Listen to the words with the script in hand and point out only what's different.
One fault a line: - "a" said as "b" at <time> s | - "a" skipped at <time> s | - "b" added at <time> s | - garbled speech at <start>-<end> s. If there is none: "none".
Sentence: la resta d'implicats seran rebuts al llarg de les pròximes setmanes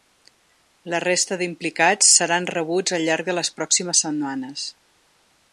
none